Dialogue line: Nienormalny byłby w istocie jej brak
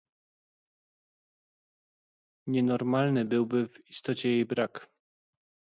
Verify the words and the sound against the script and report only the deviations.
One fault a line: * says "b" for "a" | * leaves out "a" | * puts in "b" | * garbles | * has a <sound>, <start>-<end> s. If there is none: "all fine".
all fine